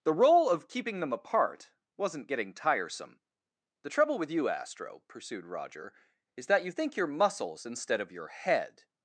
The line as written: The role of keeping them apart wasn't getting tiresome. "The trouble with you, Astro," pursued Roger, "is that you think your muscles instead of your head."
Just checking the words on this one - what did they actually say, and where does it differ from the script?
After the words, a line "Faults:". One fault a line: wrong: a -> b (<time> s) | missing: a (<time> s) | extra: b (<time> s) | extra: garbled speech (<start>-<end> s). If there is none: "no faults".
The role of keeping them apart wasn't getting tiresome. "The trouble with you, Astro," pursued Roger, "is that you think your muscles instead of your head."
Faults:
no faults